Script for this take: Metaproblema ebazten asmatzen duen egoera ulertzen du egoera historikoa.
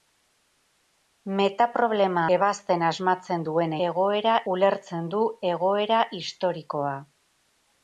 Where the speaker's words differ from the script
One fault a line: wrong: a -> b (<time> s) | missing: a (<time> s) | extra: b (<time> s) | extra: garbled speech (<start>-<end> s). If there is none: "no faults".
no faults